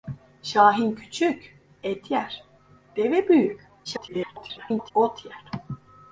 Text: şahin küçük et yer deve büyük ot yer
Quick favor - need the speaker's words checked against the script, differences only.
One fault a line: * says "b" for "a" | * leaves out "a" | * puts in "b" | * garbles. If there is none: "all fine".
* garbles